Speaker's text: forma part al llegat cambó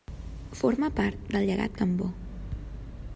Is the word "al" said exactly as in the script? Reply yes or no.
no